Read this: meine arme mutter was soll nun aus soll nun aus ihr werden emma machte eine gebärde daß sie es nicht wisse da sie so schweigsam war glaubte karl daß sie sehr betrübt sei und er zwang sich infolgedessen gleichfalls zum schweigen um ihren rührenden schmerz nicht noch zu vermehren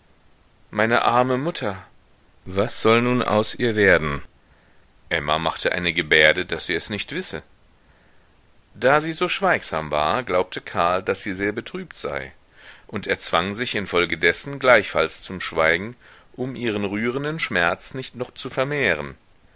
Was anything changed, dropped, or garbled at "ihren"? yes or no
no